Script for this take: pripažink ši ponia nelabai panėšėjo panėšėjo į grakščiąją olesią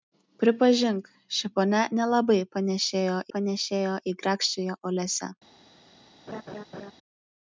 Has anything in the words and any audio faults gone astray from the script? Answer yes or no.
yes